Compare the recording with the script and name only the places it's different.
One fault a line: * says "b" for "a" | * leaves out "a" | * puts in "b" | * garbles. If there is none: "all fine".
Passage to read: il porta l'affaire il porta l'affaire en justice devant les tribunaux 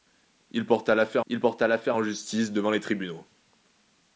all fine